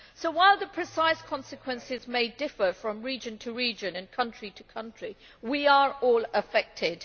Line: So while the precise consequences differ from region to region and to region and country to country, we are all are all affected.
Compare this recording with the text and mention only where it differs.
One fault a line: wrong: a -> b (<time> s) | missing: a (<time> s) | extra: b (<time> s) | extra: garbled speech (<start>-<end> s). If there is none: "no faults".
extra: may (2.1 s)
missing: to region and (4.1 s)
missing: are all (6.3 s)